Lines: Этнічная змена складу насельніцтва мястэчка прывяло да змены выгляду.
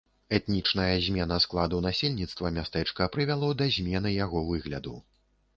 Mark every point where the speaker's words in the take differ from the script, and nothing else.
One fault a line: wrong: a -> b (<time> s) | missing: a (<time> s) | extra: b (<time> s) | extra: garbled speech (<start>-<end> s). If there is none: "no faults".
extra: яго (4.2 s)